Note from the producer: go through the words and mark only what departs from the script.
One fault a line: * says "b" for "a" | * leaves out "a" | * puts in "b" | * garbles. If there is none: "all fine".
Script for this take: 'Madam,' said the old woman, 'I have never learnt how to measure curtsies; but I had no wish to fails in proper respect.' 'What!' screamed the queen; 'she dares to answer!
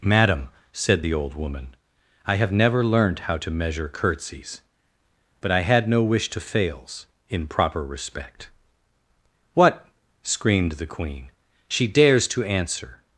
all fine